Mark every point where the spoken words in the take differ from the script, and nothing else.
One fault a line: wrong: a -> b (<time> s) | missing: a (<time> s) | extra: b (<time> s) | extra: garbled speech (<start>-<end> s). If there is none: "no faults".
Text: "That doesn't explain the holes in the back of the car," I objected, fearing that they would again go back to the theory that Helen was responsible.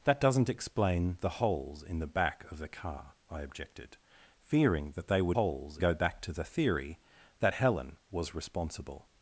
wrong: again -> holes (5.3 s)